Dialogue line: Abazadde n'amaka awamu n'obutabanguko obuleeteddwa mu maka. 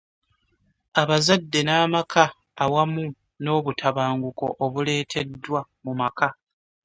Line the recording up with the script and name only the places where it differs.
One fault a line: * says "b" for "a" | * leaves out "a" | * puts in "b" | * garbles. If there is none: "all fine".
all fine